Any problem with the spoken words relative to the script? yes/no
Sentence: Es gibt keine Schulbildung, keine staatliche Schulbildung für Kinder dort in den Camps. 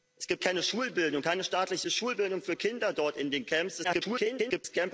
yes